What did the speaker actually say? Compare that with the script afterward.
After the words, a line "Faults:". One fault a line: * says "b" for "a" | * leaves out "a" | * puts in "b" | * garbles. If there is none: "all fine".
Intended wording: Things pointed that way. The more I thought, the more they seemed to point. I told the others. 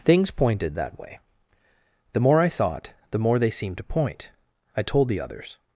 Things pointed that way. The more I thought, the more they seemed to point. I told the others.
Faults:
all fine